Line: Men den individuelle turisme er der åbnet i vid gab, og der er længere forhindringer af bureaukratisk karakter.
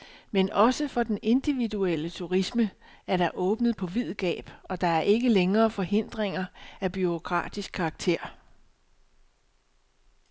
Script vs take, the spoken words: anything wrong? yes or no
yes